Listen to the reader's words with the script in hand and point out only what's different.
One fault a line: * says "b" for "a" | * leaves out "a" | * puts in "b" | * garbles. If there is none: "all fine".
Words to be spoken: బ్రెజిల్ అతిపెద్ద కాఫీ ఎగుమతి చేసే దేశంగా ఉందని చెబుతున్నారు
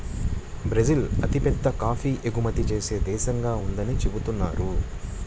all fine